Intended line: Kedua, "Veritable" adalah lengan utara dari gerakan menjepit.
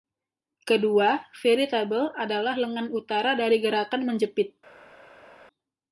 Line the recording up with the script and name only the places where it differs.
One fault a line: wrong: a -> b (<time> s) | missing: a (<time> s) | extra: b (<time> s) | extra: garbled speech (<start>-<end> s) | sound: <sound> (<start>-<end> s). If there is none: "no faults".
no faults